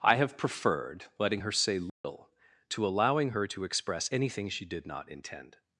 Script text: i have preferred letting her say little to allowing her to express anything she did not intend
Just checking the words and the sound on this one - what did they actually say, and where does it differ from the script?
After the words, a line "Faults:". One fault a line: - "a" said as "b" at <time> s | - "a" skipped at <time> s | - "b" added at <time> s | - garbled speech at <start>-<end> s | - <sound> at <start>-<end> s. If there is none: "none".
i have preferred letting her say little to allowing her to express anything she did not intend
Faults:
- dropout at 1.9-2.0 s